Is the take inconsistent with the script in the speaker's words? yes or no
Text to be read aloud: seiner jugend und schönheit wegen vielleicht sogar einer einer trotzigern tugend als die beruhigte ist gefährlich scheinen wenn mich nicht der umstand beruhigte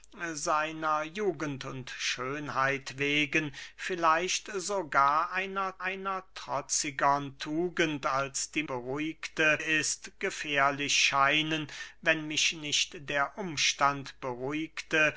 no